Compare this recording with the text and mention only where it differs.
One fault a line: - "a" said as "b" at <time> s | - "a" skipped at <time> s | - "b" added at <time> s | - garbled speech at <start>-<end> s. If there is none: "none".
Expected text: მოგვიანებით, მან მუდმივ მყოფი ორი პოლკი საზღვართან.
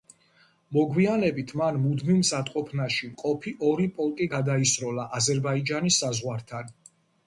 - "მზადყოფნაში" added at 2.2 s
- "გადაისროლა აზერბაიჯანის" added at 4.4 s